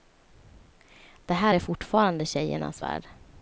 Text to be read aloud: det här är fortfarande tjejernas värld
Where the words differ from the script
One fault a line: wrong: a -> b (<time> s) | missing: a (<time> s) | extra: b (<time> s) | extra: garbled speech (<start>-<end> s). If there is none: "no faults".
no faults